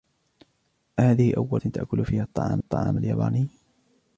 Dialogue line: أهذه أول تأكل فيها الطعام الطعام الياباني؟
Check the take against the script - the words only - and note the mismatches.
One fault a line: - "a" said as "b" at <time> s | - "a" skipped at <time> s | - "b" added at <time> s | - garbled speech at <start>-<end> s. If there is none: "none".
none